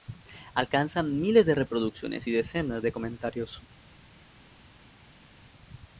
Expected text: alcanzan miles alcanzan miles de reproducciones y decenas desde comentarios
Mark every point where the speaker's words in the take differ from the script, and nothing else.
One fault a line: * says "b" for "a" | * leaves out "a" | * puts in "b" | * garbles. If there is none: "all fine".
* leaves out "alcanzan miles"
* says "de" for "desde"